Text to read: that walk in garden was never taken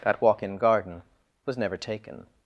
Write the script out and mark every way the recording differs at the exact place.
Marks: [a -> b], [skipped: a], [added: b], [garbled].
that walk in garden was never taken